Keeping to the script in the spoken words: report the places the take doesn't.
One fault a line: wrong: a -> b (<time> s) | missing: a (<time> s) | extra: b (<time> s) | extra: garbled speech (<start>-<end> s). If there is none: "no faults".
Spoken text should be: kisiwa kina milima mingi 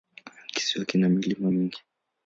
no faults